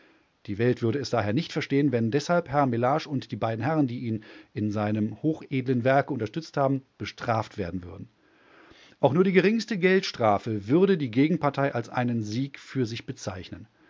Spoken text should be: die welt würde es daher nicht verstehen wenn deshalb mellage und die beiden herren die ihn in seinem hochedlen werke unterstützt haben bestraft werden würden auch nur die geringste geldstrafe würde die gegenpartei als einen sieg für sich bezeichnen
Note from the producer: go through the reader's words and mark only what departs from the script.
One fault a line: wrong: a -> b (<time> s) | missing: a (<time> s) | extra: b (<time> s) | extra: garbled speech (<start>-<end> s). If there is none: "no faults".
extra: herr (2.5 s)